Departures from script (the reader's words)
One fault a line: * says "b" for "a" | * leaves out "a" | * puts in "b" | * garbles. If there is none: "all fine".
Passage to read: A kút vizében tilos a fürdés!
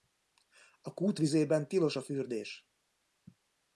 all fine